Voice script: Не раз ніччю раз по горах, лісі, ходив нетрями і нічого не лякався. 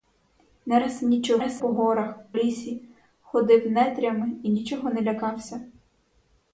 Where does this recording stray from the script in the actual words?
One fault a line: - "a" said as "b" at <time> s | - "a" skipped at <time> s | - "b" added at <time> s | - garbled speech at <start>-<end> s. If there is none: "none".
none